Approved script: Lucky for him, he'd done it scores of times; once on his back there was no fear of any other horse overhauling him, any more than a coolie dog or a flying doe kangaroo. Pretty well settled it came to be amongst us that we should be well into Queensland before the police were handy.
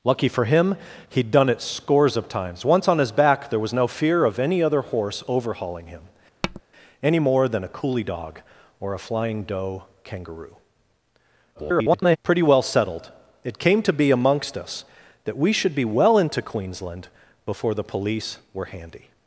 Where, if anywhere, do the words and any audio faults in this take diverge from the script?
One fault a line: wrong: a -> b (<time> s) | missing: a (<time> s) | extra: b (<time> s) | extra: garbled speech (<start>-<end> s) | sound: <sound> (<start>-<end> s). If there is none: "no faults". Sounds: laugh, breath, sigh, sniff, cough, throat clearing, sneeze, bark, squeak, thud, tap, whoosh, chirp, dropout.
sound: tap (6.4-6.6 s)
extra: garbled speech (11.5-12.2 s)